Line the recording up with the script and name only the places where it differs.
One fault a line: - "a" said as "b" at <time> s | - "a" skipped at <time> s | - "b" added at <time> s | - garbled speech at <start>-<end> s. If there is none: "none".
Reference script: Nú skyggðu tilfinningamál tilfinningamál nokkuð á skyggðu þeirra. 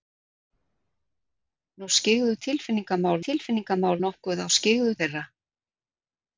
none